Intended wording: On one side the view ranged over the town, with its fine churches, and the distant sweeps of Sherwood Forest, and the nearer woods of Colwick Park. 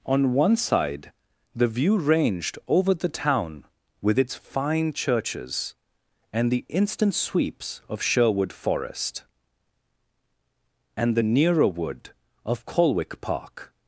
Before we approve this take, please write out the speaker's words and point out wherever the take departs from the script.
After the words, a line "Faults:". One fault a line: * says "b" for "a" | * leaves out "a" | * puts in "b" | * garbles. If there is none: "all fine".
On one side the view ranged over the town, with its fine churches, and the instant sweeps of Sherwood Forest, and the nearer wood of Colwick Park.
Faults:
* says "instant" for "distant"
* says "wood" for "woods"